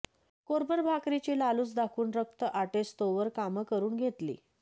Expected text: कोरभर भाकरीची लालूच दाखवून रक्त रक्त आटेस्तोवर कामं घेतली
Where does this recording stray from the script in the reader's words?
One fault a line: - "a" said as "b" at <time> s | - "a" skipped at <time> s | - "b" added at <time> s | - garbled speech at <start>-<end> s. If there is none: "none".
- "रक्त" skipped at 2.4 s
- "करून" added at 3.6 s